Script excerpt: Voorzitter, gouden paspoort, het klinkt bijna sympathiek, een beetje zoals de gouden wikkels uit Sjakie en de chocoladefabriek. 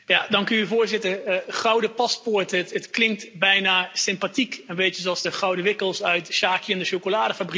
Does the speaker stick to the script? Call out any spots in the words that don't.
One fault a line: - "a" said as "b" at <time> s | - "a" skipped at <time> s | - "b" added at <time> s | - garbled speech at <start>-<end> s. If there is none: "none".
none